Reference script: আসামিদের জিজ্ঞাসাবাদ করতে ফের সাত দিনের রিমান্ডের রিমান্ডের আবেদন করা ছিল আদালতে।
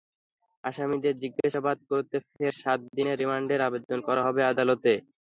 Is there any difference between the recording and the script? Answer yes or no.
yes